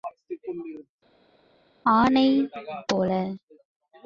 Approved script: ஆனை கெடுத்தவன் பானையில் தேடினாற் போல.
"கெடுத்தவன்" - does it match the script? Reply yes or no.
no